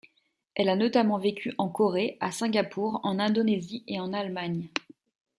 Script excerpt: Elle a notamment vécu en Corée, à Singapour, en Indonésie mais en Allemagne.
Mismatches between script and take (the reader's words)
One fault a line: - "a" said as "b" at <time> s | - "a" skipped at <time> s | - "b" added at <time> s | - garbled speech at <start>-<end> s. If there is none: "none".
- "mais" said as "et" at 3.9 s